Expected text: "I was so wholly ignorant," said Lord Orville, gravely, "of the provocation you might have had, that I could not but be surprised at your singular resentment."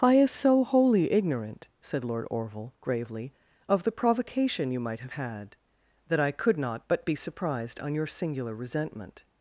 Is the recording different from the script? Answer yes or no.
yes